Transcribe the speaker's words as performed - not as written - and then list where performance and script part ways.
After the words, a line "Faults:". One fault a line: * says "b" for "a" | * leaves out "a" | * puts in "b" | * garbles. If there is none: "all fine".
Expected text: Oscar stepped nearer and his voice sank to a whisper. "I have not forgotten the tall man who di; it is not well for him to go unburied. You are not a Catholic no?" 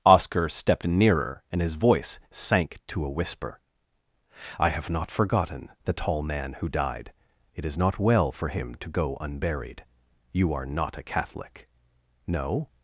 Oscar stepped nearer and his voice sank to a whisper. "I have not forgotten the tall man who died; it is not well for him to go unburied. You are not a Catholic no?"
Faults:
* says "died" for "di"